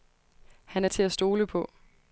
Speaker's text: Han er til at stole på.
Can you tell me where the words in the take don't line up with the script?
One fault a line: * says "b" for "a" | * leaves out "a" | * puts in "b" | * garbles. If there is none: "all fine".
all fine